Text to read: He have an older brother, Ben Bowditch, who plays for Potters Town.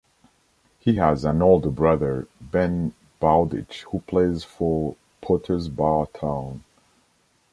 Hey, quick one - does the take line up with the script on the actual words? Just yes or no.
no